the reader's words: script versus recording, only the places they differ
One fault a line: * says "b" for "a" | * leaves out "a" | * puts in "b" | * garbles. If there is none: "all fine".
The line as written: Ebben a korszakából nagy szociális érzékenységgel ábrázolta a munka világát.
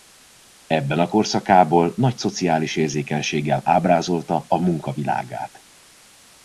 all fine